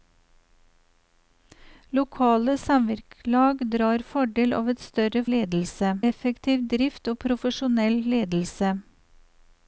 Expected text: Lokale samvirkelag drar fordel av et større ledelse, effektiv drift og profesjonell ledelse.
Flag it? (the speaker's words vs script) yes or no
no